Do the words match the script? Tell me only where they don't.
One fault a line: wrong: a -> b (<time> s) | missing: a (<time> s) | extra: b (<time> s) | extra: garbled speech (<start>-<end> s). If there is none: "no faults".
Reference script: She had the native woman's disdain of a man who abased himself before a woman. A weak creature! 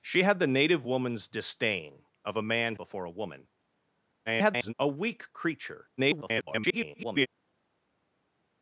missing: who abased himself (2.8 s)
extra: garbled speech (4.3-4.7 s)
extra: garbled speech (6.0-7.3 s)